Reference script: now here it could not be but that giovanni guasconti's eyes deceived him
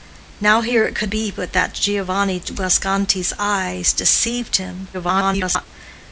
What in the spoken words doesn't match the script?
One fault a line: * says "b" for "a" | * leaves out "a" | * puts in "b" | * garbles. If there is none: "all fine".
* leaves out "not"
* garbles